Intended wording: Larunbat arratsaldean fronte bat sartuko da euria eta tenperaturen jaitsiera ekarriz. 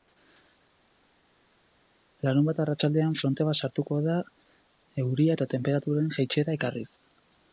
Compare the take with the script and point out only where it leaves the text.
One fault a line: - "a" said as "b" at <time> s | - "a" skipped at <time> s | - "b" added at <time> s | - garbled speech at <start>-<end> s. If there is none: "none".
none